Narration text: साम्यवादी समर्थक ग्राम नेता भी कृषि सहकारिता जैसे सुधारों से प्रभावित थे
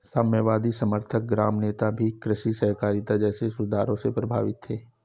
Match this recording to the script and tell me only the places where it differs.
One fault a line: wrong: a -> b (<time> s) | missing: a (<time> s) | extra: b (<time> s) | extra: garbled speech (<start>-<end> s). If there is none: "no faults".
no faults